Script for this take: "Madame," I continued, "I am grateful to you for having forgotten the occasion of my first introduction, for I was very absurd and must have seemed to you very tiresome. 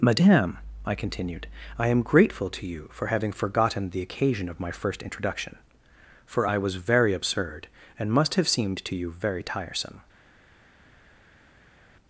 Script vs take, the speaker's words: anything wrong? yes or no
no